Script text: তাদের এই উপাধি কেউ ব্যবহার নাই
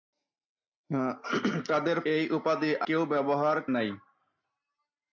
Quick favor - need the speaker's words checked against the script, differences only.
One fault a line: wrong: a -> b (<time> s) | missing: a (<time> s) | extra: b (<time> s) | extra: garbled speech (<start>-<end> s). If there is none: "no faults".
no faults